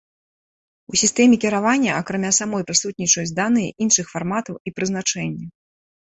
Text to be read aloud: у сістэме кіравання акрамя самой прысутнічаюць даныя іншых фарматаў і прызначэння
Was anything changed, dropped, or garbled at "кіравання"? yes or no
no